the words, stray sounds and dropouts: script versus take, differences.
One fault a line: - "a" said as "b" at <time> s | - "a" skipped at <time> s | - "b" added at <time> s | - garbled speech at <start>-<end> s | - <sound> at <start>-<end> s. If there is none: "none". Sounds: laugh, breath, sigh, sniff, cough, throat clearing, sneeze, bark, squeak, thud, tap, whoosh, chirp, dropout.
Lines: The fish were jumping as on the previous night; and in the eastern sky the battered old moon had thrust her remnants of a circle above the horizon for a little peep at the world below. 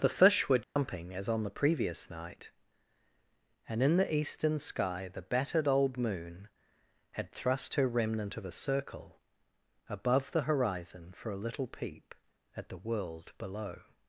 - dropout at 0.6-0.8 s
- "remnants" said as "remnant" at 7.9 s